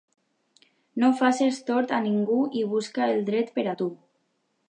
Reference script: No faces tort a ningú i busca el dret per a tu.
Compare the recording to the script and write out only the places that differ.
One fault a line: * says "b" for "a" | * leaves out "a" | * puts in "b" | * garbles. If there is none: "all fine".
all fine